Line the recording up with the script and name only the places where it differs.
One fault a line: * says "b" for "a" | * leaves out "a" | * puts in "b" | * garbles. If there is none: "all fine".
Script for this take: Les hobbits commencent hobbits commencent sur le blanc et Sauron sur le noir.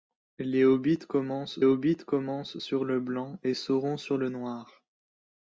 all fine